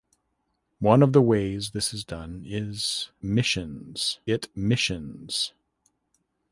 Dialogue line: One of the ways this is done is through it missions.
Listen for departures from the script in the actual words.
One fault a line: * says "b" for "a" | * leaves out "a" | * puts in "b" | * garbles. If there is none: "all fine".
* says "missions" for "through"